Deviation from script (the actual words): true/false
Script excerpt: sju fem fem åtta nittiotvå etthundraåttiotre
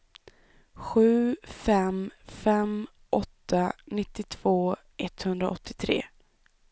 false